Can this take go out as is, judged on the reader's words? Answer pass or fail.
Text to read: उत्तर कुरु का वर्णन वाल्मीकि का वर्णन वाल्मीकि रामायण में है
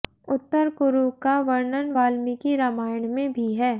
fail